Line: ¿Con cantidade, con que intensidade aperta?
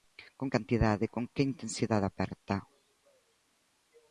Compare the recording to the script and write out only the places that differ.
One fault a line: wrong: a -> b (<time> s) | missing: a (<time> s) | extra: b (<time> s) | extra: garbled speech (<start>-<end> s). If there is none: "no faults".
no faults